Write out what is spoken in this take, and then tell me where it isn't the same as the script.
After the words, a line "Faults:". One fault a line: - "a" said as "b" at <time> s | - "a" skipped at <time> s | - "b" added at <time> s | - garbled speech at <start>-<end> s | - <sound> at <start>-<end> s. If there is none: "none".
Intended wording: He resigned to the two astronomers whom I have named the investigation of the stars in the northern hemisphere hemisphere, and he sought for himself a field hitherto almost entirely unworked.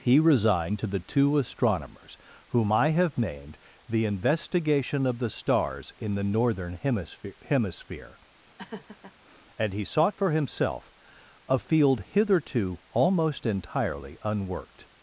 He resigned to the two astronomers whom I have named the investigation of the stars in the northern hemisphere hemisphere, and he sought for himself a field hitherto almost entirely unworked.
Faults:
- laugh at 8.6-9.1 s